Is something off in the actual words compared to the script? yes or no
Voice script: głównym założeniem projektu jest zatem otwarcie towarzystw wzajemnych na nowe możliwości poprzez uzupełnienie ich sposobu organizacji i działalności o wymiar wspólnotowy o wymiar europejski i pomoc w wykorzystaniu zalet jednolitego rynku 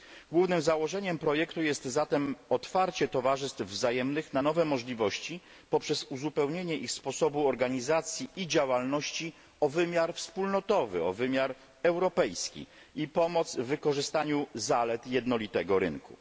no